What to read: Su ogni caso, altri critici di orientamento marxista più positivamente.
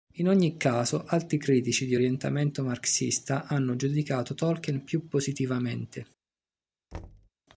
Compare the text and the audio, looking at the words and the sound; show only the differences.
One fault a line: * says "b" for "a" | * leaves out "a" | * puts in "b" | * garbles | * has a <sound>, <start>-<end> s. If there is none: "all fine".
* says "In" for "Su"
* puts in "hanno giudicato Tolkien"
* has a thud, 6.9-7.3 s